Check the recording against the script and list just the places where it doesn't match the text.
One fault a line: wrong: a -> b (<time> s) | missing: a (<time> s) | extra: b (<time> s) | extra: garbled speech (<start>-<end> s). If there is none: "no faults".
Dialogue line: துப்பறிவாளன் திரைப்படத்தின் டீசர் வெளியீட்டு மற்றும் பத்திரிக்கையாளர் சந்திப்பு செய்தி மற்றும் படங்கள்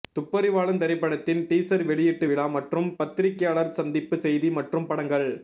extra: விழா (2.3 s)